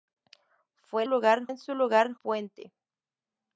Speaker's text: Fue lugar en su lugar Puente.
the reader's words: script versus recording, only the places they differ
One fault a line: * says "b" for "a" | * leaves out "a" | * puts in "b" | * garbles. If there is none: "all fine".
all fine